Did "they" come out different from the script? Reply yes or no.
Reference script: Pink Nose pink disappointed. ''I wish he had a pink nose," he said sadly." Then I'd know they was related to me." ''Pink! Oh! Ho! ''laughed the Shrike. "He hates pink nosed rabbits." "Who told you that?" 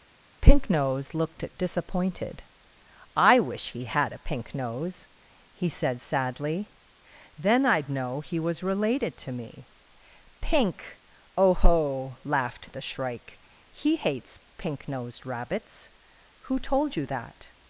yes